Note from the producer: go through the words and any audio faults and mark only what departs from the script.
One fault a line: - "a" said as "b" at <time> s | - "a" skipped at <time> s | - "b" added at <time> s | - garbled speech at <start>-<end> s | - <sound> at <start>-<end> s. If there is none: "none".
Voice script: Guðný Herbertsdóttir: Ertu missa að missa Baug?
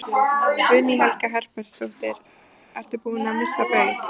- "Helga" added at 1.0 s
- "missa" said as "búinn" at 3.0 s